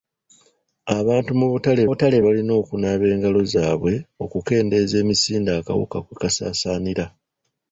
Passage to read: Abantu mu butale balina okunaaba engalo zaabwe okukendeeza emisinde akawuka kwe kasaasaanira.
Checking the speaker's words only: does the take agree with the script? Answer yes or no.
no